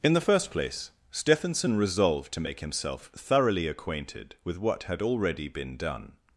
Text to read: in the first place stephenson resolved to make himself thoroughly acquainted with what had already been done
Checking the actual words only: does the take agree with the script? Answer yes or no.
yes